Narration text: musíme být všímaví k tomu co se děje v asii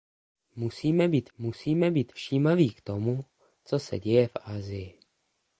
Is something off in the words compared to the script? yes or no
yes